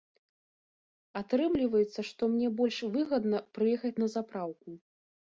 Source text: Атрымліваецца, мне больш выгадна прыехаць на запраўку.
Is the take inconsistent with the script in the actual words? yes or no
yes